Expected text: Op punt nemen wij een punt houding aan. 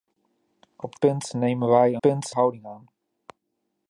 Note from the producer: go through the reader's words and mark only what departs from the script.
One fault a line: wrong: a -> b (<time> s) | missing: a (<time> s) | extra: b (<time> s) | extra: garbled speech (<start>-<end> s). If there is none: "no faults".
no faults